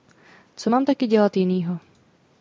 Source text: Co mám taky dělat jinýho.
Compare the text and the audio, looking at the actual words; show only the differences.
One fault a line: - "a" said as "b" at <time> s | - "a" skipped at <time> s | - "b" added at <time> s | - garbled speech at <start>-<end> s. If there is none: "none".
none